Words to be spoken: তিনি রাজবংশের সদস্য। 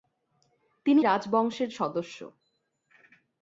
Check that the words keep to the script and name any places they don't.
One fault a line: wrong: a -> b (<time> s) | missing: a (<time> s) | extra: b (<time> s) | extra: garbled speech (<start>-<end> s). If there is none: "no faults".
no faults